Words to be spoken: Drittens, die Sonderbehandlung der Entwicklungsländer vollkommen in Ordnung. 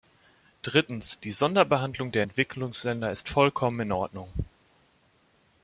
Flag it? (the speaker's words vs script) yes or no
yes